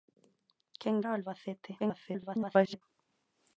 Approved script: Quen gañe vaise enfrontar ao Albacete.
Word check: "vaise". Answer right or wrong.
wrong